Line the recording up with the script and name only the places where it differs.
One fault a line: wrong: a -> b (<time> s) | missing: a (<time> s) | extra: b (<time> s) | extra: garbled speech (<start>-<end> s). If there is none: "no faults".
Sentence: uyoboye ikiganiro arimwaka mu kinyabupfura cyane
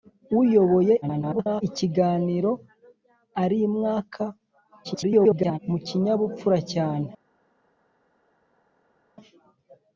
extra: garbled speech (1.0-1.6 s)
extra: garbled speech (4.8-5.6 s)